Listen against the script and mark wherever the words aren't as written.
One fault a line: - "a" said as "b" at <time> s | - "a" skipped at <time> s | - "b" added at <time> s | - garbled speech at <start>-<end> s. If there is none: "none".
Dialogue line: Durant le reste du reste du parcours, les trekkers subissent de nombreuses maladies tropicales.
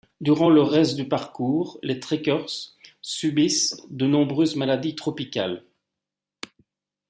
- "reste du" skipped at 1.1 s